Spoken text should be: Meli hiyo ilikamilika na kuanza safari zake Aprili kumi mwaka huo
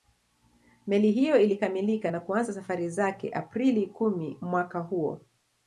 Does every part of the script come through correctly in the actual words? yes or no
yes